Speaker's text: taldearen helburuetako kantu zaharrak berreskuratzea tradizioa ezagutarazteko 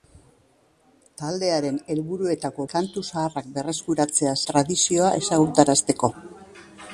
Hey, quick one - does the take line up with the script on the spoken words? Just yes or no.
yes